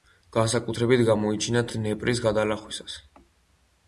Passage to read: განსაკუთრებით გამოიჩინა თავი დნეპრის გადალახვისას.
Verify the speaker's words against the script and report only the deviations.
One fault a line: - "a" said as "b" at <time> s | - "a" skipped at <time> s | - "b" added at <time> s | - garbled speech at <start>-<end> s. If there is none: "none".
- "თავი" skipped at 1.6 s